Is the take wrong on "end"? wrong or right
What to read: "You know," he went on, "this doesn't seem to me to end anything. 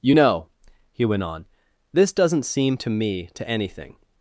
wrong